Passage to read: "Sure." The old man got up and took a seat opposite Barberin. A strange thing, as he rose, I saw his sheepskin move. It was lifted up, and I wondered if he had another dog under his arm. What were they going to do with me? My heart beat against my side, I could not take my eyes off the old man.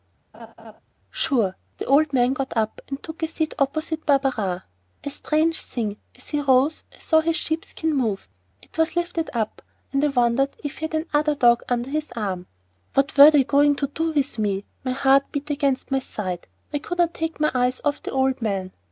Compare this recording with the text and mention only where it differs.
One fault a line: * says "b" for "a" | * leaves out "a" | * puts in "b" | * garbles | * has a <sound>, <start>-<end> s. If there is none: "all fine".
* has a laugh, 0.3-0.8 s